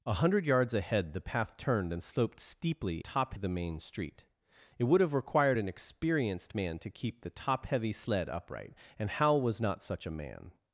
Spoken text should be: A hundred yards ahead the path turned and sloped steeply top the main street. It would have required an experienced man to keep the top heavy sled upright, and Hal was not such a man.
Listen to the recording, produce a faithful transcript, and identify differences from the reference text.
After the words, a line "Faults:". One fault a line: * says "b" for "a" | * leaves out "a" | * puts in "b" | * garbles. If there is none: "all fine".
A hundred yards ahead the path turned and sloped steeply top the main street. It would have required an experienced man to keep the top heavy sled upright, and Hal was not such a man.
Faults:
all fine